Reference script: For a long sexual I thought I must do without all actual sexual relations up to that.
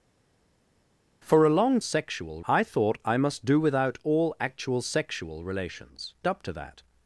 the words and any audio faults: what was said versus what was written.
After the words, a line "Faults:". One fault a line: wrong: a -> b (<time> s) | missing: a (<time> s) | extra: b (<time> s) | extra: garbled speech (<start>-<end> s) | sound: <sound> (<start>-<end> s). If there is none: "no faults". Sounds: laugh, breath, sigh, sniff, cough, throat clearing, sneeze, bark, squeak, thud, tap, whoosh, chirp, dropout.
For a long sexual I thought I must do without all actual sexual relations up to that.
Faults:
no faults